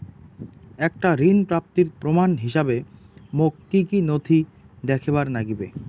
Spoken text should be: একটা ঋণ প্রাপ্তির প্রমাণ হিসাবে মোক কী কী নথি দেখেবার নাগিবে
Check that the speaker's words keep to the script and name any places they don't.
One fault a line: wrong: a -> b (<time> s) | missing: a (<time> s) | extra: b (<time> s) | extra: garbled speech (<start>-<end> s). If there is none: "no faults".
no faults